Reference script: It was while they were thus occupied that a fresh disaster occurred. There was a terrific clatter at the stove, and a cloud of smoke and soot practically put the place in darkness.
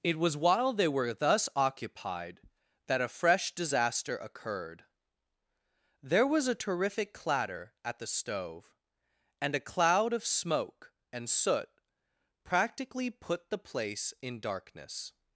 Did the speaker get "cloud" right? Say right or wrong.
right